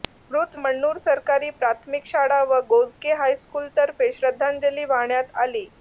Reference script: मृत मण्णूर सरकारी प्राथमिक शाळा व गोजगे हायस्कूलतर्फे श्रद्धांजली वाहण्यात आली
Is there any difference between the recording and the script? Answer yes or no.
no